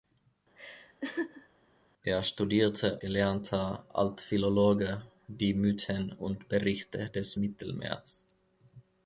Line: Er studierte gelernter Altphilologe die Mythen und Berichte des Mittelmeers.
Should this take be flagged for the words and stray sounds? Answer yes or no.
yes